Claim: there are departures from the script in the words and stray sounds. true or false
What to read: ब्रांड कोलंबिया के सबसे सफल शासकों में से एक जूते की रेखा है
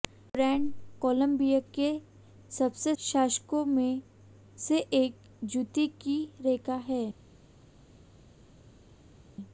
true